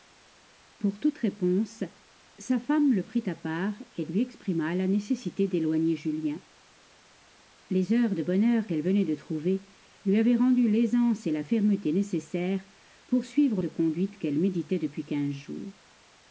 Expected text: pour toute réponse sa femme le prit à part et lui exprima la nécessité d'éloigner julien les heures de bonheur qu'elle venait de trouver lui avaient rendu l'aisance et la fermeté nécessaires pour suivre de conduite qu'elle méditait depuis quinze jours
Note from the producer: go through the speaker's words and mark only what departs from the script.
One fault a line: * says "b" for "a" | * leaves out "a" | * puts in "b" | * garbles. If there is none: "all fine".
all fine